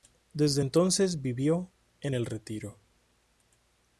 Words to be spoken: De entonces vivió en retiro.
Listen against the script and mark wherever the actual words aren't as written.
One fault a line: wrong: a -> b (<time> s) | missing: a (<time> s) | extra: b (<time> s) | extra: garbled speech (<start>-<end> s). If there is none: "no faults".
wrong: De -> Desde (0.3 s)
extra: el (2.1 s)